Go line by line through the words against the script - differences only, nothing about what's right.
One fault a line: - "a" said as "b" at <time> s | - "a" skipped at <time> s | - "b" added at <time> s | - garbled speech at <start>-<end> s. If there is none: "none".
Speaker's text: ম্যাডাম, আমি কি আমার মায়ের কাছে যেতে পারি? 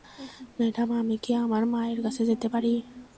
none